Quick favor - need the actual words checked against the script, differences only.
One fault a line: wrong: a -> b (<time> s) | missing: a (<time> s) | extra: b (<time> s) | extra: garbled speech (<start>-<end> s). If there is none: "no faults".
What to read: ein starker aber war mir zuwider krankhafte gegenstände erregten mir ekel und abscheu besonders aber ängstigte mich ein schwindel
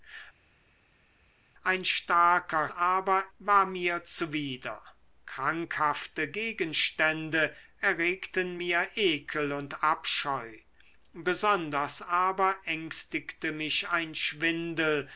no faults